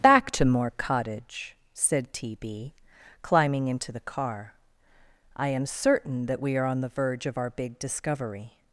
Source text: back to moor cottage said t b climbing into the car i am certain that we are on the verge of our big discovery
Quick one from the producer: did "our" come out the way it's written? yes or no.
yes